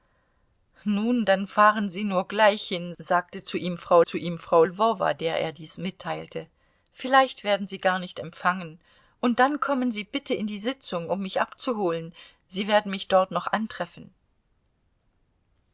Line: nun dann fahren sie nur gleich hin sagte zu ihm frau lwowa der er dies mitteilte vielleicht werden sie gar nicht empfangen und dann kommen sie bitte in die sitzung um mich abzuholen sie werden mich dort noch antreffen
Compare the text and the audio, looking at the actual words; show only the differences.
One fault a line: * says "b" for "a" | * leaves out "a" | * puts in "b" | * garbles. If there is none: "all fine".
* puts in "zu ihm frau"